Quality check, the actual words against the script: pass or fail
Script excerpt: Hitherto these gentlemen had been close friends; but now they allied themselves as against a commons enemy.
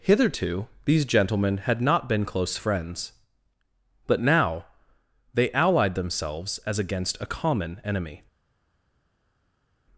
fail